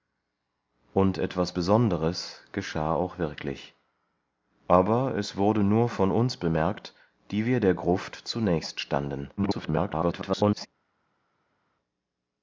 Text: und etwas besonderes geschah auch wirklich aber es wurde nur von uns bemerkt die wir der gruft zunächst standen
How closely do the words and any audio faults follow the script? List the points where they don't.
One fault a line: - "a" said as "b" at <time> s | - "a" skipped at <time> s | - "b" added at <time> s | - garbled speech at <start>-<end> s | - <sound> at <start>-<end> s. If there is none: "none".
- garbled speech at 9.4-10.7 s